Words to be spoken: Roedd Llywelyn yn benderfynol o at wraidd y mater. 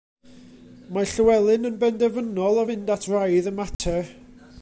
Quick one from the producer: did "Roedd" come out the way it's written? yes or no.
no